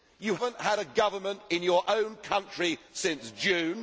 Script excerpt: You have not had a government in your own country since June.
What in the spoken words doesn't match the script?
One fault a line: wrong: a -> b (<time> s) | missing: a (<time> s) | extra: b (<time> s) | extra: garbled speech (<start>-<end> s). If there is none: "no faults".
missing: have (0.3 s)